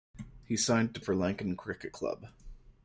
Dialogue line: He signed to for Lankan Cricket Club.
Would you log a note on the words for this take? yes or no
no